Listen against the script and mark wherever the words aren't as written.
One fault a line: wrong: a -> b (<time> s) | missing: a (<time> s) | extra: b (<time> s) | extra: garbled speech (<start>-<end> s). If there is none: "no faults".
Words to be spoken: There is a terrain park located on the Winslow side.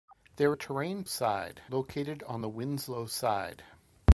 missing: is (0.6 s)
wrong: park -> side (1.0 s)